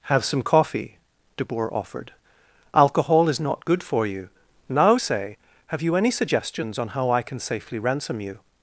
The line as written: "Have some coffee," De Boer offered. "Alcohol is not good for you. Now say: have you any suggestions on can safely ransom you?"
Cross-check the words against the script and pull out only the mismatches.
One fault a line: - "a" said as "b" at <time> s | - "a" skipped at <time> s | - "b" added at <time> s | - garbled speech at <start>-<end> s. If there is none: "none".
- "how I" added at 6.9 s